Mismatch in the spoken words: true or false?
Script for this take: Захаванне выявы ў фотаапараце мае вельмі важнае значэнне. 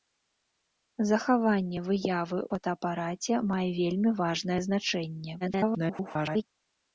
true